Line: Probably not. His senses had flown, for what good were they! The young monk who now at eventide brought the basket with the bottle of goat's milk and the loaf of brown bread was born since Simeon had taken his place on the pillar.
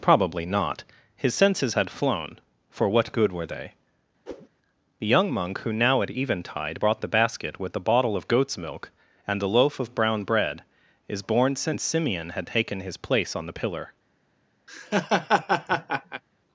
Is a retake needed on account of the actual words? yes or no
yes